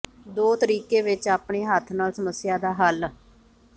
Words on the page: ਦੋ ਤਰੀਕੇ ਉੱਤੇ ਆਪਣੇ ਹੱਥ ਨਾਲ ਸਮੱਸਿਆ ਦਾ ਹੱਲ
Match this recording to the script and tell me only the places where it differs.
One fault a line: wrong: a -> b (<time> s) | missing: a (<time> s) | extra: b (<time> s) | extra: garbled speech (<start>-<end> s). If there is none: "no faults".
wrong: ਉੱਤੇ -> ਵਿੱਚ (1.0 s)